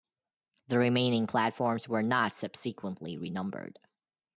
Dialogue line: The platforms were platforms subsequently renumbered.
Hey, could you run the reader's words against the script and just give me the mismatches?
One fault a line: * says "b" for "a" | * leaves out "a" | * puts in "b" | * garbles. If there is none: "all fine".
* puts in "remaining"
* says "not" for "platforms"